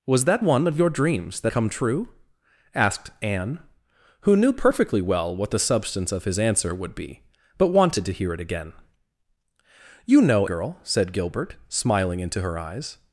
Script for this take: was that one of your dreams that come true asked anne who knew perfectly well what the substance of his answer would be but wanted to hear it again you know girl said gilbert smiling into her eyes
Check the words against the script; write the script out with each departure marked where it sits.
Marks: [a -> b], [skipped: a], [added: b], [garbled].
was that one of your dreams that come true asked anne who knew perfectly well what the substance of his answer would be but wanted to hear it again you know girl said gilbert smiling into her eyes